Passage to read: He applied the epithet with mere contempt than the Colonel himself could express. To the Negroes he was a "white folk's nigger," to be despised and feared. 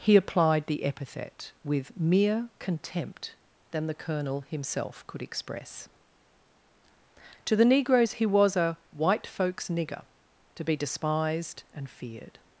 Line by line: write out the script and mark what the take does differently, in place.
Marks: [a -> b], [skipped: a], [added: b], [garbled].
He applied the epithet with mere contempt than the Colonel himself could express. To the Negroes he was a "white folk's nigger," to be despised and feared.